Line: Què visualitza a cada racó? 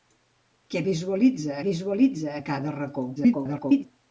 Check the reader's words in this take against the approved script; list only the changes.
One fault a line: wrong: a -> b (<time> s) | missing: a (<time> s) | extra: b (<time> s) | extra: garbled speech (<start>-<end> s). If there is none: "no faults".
extra: visualitza (1.6 s)
extra: garbled speech (3.2-3.9 s)